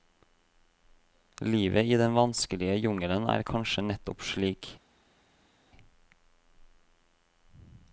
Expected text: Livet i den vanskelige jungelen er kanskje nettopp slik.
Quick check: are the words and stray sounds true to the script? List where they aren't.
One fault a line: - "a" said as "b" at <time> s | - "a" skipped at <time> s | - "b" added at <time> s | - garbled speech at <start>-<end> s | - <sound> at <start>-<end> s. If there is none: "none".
none